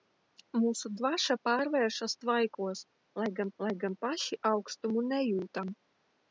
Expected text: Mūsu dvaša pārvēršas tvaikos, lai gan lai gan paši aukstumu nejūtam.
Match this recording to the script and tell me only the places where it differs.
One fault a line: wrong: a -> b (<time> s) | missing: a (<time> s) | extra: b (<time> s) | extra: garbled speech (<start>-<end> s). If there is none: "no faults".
no faults